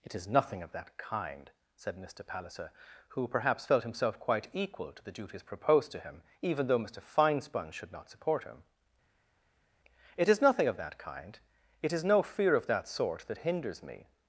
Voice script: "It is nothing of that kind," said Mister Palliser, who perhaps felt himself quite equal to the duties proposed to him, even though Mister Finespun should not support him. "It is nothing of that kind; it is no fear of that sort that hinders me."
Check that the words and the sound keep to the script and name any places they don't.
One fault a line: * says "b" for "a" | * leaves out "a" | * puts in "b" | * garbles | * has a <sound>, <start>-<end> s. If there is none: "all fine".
all fine